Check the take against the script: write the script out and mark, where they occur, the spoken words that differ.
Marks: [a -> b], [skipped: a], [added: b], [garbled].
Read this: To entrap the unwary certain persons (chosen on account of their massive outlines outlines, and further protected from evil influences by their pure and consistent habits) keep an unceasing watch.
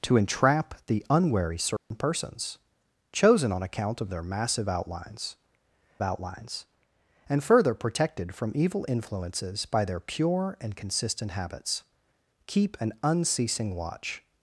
To entrap the unwary certain persons (chosen on account of their massive outlines outlines, and further protected from evil influences by their pure and consistent habits) keep an unceasing watch.